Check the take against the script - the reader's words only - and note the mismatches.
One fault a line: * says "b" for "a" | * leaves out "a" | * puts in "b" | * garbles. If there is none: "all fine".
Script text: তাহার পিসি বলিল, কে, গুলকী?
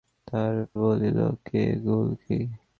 * leaves out "পিসি"